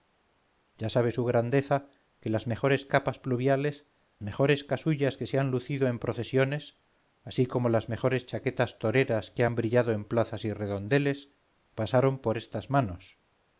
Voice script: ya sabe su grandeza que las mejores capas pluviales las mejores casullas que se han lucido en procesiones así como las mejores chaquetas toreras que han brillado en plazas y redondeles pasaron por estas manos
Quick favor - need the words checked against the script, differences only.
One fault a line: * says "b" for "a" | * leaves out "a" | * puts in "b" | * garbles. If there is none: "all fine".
* leaves out "las"